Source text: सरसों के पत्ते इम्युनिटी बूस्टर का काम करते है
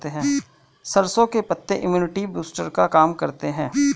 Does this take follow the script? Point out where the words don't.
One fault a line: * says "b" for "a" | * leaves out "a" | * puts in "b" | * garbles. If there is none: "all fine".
all fine